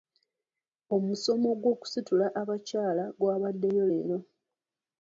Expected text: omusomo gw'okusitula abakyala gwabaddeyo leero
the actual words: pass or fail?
pass